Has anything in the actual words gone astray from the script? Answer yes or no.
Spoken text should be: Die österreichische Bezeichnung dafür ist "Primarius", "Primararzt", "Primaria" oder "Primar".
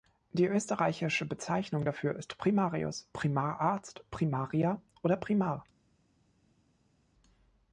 no